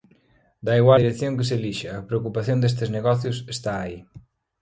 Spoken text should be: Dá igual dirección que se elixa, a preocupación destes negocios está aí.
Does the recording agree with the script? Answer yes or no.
yes